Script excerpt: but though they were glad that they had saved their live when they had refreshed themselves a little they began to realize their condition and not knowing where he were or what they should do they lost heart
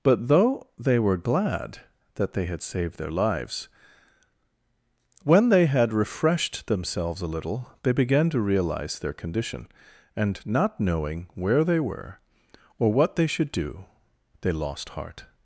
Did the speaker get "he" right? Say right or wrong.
wrong